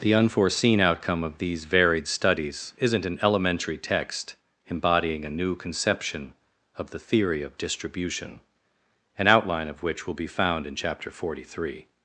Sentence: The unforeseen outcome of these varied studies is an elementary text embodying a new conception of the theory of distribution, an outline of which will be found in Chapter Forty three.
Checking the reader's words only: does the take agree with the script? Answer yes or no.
no